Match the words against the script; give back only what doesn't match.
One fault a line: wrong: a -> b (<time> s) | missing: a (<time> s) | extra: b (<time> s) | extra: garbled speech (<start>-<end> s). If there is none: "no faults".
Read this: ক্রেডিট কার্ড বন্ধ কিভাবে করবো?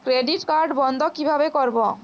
no faults